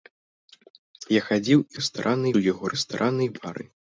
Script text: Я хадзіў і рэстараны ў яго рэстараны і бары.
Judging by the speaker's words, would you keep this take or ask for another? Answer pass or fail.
pass